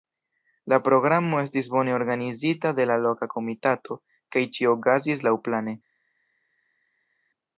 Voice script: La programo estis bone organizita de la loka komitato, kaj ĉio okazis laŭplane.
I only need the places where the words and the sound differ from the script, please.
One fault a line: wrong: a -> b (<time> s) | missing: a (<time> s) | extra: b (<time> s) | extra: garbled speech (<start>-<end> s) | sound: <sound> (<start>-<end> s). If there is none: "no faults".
no faults